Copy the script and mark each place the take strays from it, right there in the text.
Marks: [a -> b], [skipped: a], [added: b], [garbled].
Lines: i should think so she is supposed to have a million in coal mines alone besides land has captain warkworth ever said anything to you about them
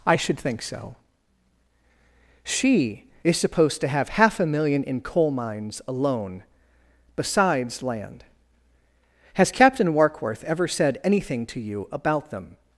i should think so she is supposed to have [added: half] a million in coal mines alone besides land has captain warkworth ever said anything to you about them